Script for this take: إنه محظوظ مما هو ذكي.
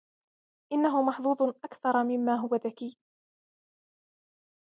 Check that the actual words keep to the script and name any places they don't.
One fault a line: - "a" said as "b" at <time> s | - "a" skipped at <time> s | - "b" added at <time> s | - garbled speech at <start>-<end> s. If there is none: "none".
- "أكثر" added at 1.4 s